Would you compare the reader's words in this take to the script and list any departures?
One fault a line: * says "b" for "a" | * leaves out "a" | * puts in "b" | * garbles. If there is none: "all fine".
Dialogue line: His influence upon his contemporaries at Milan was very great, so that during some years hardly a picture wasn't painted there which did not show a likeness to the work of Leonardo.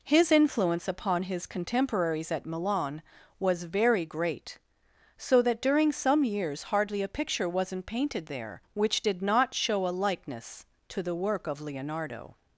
all fine